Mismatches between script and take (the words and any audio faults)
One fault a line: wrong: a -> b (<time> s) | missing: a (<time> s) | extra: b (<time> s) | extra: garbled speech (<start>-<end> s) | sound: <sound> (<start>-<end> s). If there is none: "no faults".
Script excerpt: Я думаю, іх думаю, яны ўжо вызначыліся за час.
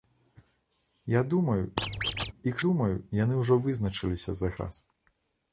sound: squeak (1.8-2.3 s)